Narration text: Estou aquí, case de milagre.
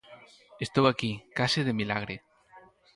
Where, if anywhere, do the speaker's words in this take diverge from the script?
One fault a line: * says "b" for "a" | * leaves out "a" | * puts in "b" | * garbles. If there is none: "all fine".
all fine